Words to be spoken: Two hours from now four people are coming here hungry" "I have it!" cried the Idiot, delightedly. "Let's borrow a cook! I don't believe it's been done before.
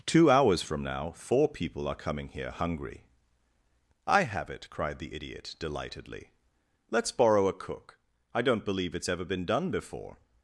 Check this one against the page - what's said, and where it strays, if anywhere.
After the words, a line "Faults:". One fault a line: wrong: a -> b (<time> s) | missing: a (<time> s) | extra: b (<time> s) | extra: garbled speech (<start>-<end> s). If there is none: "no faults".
Two hours from now four people are coming here hungry" "I have it!" cried the Idiot, delightedly. "Let's borrow a cook! I don't believe it's ever been done before.
Faults:
extra: ever (9.1 s)